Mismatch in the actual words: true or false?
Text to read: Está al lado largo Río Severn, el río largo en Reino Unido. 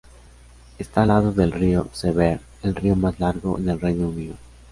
true